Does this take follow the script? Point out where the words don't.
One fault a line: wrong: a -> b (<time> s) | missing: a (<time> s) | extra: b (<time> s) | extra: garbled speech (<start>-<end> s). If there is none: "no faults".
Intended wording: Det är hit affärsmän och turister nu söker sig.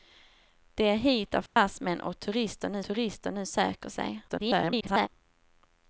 extra: turister nu (2.8 s)
extra: garbled speech (4.3-5.1 s)